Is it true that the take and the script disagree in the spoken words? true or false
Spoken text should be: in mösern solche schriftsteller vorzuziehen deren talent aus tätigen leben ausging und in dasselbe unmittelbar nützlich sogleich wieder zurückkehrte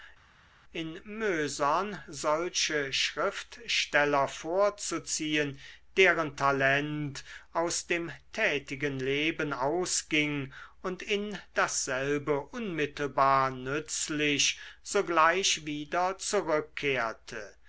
true